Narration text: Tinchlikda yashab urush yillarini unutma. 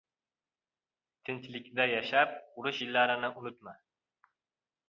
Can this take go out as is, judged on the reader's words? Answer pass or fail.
pass